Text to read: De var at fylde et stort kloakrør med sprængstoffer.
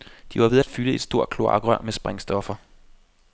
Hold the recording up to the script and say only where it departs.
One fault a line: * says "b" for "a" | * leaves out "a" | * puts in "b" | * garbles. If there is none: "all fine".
* puts in "ved"